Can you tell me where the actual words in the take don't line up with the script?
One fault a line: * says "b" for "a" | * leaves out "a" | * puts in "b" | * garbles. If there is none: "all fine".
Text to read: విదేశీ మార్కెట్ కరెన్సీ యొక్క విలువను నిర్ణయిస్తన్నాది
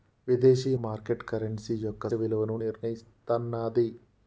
all fine